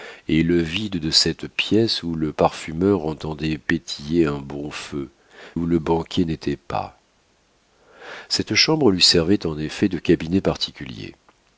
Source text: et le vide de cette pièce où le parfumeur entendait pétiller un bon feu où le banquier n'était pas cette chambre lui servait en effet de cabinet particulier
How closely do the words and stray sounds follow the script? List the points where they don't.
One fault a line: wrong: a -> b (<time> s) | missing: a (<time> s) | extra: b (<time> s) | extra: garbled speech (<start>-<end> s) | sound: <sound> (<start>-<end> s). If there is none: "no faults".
no faults